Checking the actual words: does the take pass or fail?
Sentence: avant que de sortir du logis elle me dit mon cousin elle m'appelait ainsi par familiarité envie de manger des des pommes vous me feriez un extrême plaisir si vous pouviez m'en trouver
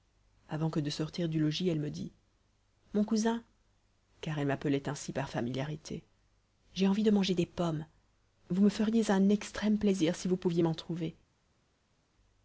fail